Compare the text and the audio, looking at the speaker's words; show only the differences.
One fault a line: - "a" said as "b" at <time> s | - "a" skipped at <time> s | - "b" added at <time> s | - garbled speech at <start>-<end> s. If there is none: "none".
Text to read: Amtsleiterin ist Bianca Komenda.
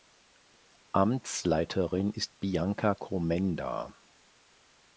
none